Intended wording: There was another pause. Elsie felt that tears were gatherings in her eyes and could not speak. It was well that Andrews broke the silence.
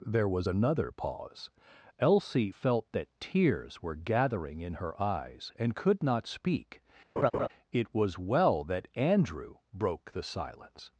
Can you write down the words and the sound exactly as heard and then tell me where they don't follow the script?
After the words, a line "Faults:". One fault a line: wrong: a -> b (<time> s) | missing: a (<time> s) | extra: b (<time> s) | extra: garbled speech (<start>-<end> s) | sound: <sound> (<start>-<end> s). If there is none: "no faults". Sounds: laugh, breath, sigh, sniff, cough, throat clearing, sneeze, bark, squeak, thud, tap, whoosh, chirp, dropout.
There was another pause. Elsie felt that tears were gathering in her eyes and could not speak. It was well that Andrew broke the silence.
Faults:
wrong: gatherings -> gathering (3.9 s)
sound: laugh (7.2-7.5 s)
wrong: Andrews -> Andrew (8.9 s)